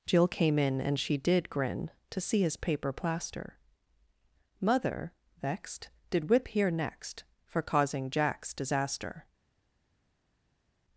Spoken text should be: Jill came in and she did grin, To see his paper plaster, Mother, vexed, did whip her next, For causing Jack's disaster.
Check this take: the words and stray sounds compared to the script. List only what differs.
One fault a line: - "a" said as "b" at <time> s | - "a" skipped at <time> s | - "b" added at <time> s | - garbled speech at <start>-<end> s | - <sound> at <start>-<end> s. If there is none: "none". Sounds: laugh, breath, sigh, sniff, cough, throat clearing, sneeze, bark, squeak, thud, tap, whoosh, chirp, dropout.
- "her" said as "here" at 6.5 s